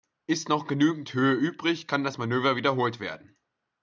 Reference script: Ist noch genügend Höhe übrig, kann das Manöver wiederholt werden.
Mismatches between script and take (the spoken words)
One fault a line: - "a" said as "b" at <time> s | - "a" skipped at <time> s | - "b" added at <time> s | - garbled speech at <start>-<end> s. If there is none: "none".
none